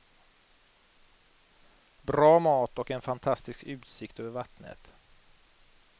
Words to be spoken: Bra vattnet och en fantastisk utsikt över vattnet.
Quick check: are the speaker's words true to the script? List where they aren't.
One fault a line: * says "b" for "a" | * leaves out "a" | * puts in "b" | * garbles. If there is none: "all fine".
* says "mat" for "vattnet"